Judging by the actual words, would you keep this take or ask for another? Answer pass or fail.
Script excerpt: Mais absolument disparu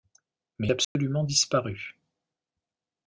pass